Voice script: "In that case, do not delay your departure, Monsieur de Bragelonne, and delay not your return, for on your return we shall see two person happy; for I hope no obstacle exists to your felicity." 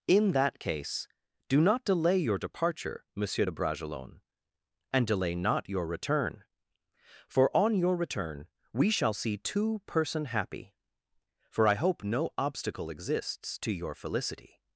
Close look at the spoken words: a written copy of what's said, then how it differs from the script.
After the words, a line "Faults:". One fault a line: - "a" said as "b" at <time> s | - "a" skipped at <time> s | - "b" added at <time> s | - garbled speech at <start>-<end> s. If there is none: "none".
"In that case, do not delay your departure, Monsieur de Bragelonne, and delay not your return, for on your return we shall see two person happy; for I hope no obstacle exists to your felicity."
Faults:
none